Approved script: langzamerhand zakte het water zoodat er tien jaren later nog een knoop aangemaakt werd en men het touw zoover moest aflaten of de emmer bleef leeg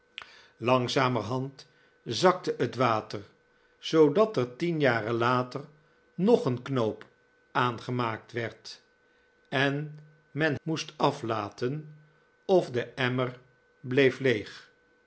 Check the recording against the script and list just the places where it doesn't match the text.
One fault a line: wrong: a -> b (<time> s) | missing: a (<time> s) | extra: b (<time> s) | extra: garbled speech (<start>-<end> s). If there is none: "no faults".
missing: het touw zoover (10.5 s)